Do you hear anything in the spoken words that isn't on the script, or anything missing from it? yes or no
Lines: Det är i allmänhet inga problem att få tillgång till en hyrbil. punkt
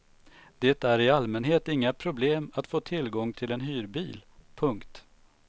no